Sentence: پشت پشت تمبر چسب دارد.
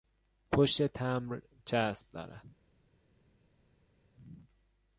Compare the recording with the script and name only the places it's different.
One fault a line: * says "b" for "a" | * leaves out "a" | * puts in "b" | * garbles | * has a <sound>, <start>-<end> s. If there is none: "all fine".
* leaves out "پشت"